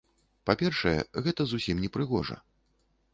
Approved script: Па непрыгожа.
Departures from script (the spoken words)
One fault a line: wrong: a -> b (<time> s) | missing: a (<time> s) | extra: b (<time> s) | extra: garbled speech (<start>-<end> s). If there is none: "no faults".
extra: першае гэта зусім (0.6 s)